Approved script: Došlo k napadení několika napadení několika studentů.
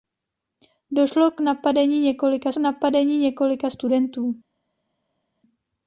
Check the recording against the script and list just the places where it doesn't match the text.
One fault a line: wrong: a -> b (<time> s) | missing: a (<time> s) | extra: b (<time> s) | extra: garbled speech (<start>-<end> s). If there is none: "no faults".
no faults